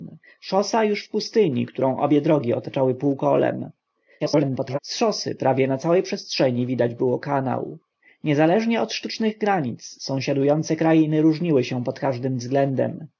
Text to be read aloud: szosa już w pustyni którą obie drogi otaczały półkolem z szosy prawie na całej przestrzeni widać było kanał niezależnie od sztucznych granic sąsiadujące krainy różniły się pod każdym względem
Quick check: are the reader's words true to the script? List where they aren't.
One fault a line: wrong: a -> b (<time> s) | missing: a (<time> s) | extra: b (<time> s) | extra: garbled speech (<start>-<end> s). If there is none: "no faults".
extra: garbled speech (4.2-4.8 s)